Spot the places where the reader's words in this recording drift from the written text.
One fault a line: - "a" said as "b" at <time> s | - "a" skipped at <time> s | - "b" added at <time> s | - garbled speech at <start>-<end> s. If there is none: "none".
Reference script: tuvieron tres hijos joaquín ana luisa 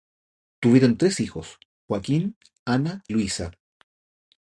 none